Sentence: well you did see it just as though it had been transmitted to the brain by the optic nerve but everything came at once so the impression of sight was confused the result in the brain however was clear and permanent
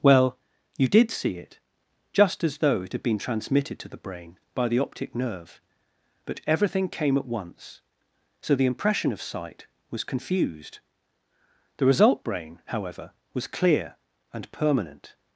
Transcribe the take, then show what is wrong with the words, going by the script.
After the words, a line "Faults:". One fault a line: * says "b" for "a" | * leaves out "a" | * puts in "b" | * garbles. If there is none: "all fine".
well you did see it just as though it had been transmitted to the brain by the optic nerve but everything came at once so the impression of sight was confused the result brain however was clear and permanent
Faults:
* leaves out "in the"